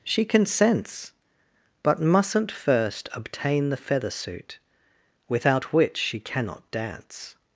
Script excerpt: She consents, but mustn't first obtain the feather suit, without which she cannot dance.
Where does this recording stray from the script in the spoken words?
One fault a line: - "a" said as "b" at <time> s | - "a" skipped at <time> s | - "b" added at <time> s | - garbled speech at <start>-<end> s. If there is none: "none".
none